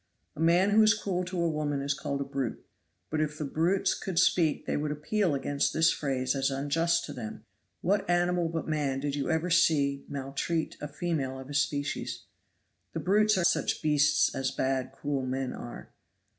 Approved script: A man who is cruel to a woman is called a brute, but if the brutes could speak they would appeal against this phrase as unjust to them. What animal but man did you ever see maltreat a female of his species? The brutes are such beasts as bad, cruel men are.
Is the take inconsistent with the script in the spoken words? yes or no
no